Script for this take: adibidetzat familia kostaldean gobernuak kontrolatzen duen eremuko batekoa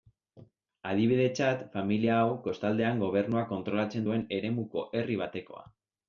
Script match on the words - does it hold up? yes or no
no